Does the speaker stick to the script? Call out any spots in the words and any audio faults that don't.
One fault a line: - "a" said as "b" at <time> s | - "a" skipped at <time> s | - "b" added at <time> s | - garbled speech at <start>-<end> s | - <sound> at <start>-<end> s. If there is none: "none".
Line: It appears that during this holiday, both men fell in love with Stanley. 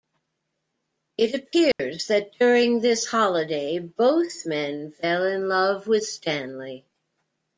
- dropout at 1.7-1.8 s